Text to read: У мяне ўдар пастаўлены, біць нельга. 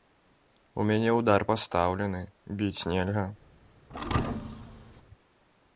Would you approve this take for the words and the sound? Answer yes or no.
no